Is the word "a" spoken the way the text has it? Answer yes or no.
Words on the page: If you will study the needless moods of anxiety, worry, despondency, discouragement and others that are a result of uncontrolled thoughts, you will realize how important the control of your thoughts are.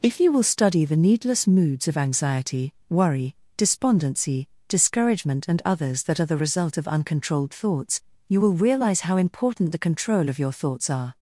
no